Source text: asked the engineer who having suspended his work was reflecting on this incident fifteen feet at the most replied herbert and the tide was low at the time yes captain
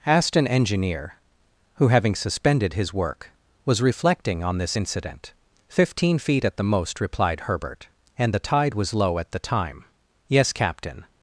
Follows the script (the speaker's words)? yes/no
no